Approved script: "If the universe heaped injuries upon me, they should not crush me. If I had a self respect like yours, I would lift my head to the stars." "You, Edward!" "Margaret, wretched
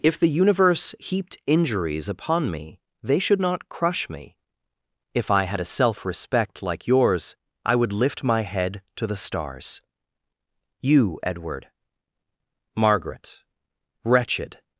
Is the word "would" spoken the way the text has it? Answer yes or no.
yes